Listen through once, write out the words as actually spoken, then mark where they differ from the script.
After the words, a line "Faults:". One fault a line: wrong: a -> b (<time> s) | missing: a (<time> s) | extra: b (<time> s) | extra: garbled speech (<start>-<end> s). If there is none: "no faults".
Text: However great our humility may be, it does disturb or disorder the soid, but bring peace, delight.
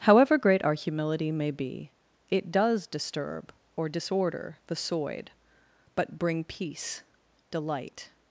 However great our humility may be, it does disturb or disorder the soid, but bring peace, delight.
Faults:
no faults